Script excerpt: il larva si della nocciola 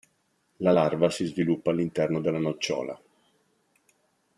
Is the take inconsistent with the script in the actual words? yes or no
yes